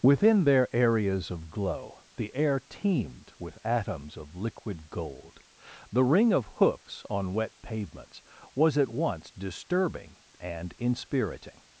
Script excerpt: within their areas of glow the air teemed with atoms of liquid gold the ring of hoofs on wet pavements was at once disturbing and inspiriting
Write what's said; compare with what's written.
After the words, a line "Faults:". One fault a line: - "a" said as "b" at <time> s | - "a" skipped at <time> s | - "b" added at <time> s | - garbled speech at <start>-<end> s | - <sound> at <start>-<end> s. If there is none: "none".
within their areas of glow the air teemed with atoms of liquid gold the ring of hoofs on wet pavements was at once disturbing and inspiriting
Faults:
none